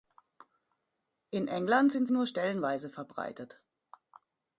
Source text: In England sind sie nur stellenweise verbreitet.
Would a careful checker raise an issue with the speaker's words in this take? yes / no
yes